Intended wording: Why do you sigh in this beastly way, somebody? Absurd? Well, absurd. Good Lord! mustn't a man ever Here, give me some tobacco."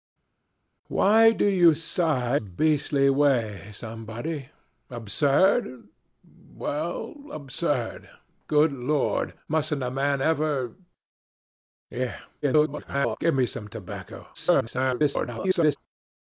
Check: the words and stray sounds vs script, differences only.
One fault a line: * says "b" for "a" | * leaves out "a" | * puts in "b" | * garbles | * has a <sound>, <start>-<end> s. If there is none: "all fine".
* leaves out "in this"
* garbles
* garbles